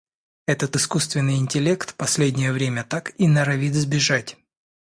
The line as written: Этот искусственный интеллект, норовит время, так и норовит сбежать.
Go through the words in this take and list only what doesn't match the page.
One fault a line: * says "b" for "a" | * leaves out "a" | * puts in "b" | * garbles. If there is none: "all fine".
* says "последнее" for "норовит"